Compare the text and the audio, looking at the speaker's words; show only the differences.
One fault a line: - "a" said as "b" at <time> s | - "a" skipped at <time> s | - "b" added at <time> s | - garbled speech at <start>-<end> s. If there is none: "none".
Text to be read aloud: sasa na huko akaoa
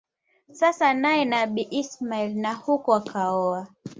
- "naye Nabii Ismail" added at 0.9 s